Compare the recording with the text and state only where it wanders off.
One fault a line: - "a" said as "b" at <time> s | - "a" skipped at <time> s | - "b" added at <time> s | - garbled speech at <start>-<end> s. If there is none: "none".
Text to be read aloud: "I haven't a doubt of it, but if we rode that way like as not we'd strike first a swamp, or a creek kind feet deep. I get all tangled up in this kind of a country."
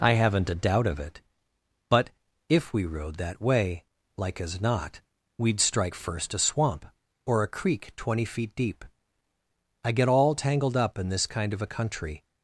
- "kind" said as "twenty" at 8.0 s